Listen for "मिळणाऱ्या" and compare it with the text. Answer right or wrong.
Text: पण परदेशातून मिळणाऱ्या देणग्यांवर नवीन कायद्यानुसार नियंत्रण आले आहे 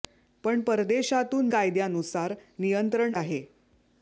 wrong